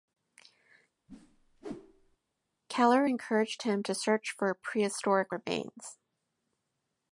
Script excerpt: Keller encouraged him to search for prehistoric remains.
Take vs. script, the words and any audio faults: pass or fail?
fail